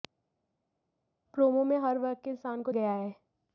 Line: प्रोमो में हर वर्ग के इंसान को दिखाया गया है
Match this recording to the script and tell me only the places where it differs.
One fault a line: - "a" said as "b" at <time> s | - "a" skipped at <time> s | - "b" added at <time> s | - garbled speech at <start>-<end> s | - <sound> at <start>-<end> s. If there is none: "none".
- "दिखाया" skipped at 2.7 s